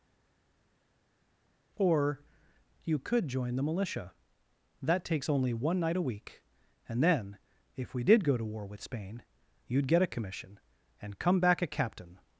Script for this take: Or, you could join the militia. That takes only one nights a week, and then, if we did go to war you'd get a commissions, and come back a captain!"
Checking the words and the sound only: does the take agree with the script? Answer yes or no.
no